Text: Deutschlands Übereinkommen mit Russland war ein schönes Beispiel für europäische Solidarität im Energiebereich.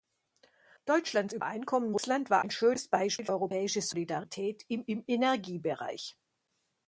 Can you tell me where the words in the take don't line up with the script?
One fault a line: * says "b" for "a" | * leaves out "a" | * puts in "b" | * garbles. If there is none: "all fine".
* leaves out "mit"
* leaves out "für"
* puts in "im"